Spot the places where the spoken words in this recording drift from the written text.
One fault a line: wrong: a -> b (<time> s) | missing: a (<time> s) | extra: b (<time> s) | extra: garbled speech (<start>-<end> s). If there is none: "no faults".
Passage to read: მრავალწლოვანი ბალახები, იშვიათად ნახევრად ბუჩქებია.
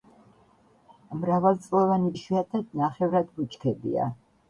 missing: ბალახები (2.1 s)